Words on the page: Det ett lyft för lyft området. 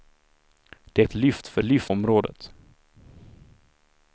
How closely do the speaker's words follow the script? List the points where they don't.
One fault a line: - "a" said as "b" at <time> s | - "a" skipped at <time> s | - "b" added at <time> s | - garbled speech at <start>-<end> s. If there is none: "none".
none